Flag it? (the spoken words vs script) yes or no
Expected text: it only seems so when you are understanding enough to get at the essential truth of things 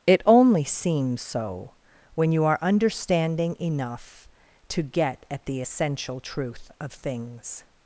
no